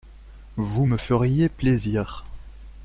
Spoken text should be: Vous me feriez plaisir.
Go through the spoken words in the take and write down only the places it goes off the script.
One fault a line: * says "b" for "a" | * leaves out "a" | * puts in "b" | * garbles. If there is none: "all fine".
all fine